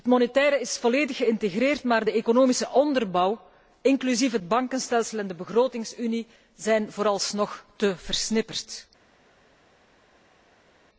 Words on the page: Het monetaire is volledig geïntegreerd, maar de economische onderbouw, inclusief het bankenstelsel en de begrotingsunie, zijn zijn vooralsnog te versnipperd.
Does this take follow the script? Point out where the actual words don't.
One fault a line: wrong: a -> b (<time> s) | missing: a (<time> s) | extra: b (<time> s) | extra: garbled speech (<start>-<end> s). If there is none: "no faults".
missing: zijn (6.9 s)